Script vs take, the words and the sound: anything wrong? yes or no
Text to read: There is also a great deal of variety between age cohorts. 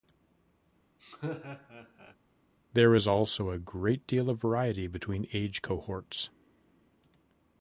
yes